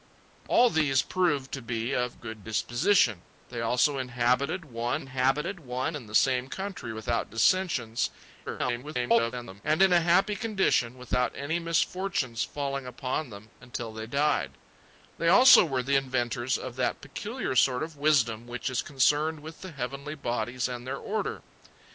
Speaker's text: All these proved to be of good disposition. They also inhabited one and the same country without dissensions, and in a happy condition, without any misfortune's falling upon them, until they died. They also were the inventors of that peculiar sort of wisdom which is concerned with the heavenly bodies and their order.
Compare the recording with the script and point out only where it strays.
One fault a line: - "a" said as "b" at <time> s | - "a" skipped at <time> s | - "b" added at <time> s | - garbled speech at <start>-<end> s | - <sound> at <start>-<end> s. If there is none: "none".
- "inhabited one" added at 5.0 s
- garbled speech at 8.5-9.6 s